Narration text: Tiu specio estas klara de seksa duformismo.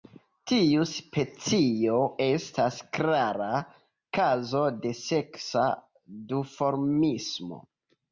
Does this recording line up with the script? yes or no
no